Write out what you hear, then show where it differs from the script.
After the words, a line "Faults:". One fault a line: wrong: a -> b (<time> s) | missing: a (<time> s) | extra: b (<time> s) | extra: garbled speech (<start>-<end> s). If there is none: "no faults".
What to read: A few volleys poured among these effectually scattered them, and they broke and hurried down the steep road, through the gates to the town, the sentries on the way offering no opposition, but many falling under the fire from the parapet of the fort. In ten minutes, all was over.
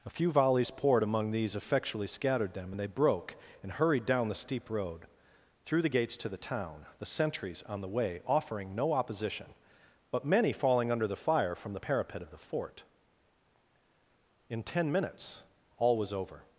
A few volleys poured among these effectually scattered them, and they broke and hurried down the steep road, through the gates to the town, the sentries on the way offering no opposition, but many falling under the fire from the parapet of the fort. In ten minutes, all was over.
Faults:
no faults